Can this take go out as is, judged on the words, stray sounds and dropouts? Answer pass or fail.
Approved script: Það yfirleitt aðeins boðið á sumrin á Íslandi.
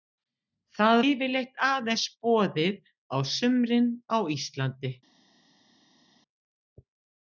pass